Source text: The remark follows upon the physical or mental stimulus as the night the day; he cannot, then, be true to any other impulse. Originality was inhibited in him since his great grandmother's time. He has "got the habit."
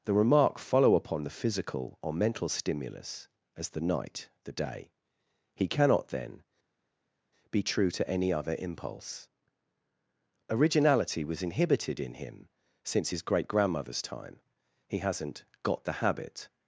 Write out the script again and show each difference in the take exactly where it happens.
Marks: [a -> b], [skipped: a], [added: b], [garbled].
The remark [follows -> follow] upon the physical or mental stimulus as the night the day; he cannot, then, be true to any other impulse. Originality was inhibited in him since his great grandmother's time. He [has -> hasn't] "got the habit."